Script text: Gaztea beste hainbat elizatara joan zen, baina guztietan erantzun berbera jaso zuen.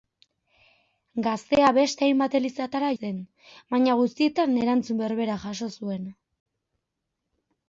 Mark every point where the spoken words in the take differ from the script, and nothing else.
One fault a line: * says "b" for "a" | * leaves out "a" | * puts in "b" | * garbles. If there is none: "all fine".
* leaves out "joan"